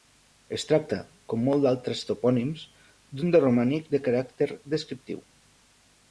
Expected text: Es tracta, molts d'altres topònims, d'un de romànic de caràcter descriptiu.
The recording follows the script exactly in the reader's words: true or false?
false